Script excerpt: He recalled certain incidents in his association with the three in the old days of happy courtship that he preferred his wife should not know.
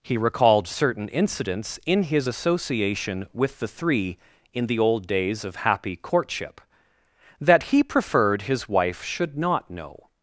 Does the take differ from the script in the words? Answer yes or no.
no